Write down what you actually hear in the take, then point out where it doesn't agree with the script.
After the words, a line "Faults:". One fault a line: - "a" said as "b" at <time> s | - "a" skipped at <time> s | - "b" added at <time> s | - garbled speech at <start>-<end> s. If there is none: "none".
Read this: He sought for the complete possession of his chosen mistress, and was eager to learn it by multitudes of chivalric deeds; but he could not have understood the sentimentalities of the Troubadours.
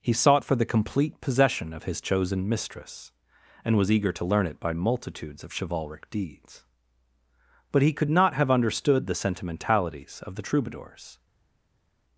He sought for the complete possession of his chosen mistress, and was eager to learn it by multitudes of chivalric deeds; but he could not have understood the sentimentalities of the Troubadours.
Faults:
none